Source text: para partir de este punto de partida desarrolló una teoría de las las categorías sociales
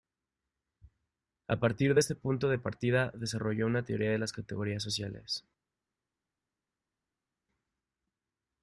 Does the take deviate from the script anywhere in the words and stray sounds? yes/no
yes